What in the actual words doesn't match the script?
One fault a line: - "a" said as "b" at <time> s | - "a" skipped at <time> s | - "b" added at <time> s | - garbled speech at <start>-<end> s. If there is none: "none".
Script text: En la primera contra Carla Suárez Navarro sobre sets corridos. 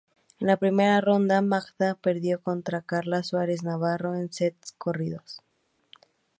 - "ronda Magda perdió" added at 1.0 s
- "sobre" said as "en" at 4.2 s